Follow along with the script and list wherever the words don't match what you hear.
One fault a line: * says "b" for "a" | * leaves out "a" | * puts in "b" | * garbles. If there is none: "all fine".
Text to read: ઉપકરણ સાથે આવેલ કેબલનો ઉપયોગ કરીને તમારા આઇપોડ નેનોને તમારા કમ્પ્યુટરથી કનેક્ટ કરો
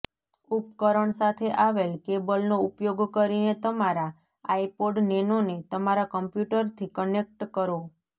all fine